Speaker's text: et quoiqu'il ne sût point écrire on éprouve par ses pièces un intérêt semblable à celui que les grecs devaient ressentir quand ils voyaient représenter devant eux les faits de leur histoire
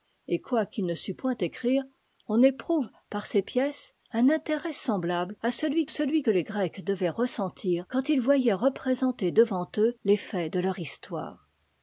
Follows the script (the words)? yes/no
no